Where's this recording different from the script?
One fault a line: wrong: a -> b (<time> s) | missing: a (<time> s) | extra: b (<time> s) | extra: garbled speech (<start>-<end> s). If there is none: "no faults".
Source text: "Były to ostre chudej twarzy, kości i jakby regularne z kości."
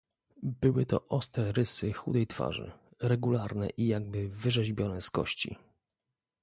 extra: rysy (1.5 s)
wrong: kości -> regularne (3.0 s)
wrong: regularne -> wyrzeźbione (4.3 s)